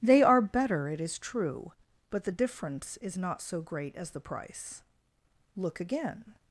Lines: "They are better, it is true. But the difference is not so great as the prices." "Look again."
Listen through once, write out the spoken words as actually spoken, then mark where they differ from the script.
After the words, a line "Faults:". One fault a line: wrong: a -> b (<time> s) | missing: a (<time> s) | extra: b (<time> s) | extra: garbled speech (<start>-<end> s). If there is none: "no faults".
"They are better, it is true. But the difference is not so great as the price." "Look again."
Faults:
wrong: prices -> price (4.2 s)